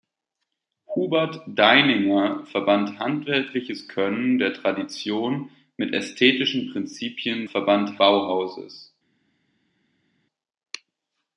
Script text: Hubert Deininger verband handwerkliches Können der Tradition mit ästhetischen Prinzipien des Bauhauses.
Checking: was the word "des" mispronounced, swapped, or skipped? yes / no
yes